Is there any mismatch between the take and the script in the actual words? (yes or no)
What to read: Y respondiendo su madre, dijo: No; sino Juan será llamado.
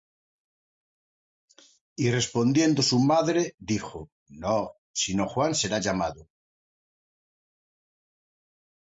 no